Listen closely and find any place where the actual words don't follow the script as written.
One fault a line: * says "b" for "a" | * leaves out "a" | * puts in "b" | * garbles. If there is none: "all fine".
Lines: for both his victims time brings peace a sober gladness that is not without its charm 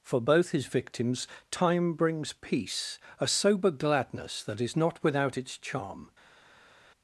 all fine